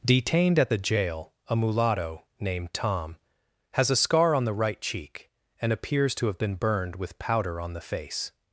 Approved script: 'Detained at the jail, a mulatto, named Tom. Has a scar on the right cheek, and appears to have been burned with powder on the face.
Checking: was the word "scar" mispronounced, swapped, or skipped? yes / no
no